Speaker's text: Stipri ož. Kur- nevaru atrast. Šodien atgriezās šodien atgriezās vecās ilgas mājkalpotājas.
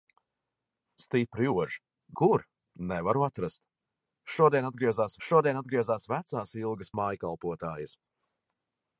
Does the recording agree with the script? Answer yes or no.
yes